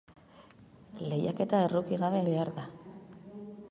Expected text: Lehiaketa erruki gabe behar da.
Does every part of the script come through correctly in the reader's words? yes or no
yes